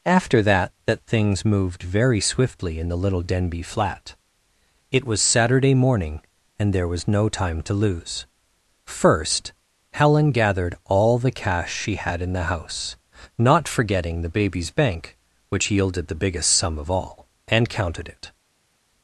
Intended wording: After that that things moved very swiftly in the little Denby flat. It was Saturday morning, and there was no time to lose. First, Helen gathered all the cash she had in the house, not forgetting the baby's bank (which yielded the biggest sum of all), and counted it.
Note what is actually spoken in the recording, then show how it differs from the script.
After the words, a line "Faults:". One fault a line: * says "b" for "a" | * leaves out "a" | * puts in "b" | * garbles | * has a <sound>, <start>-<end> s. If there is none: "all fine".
After that that things moved very swiftly in the little Denby flat. It was Saturday morning, and there was no time to lose. First, Helen gathered all the cash she had in the house, not forgetting the baby's bank (which yielded the biggest sum of all), and counted it.
Faults:
all fine